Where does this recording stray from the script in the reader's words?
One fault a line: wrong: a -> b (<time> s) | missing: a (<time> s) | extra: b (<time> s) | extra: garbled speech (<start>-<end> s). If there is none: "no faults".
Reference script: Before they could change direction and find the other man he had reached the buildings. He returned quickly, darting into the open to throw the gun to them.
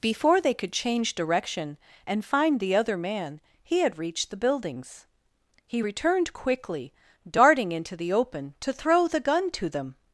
no faults